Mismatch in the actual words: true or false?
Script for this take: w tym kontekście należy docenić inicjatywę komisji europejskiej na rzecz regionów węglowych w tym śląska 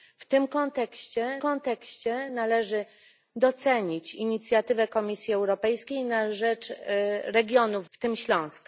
true